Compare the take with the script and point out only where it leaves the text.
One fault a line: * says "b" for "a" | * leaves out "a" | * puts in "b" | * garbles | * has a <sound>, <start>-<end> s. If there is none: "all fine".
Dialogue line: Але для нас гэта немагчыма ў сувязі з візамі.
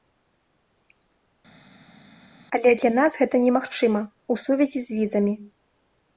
all fine